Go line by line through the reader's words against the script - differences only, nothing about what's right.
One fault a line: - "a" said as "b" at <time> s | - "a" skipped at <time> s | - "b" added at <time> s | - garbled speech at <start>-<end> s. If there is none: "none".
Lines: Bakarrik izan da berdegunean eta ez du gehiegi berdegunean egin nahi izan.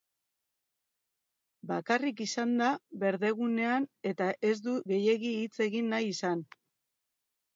- "berdegunean" said as "hitz" at 5.4 s